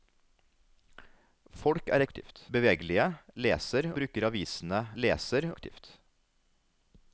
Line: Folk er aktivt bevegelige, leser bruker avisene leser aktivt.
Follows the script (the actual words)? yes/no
yes